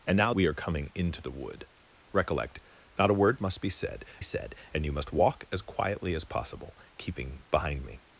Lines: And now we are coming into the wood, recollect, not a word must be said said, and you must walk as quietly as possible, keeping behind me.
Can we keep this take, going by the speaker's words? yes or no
yes